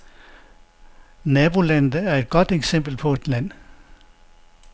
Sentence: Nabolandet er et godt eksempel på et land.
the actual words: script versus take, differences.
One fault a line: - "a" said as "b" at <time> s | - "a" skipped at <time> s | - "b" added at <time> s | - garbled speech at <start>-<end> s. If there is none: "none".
none